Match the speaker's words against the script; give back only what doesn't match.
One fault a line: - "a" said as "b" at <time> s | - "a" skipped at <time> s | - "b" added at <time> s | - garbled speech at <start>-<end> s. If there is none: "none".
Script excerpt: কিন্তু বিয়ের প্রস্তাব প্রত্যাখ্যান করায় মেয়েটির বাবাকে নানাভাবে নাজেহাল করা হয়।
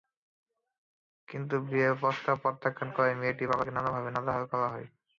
none